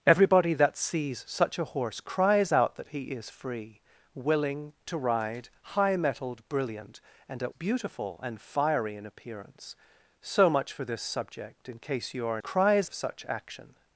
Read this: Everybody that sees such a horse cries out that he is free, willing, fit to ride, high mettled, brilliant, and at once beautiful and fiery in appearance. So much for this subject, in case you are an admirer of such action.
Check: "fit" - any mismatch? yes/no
yes